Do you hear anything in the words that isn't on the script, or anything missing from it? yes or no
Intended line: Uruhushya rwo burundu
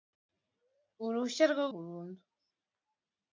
no